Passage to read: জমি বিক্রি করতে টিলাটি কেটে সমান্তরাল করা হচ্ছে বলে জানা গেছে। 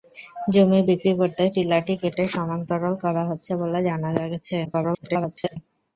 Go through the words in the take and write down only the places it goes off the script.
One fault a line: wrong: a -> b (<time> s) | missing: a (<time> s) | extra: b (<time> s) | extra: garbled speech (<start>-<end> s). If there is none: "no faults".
extra: garbled speech (4.6-5.6 s)